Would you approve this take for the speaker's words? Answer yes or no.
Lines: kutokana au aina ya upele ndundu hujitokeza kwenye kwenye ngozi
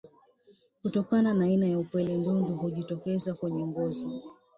no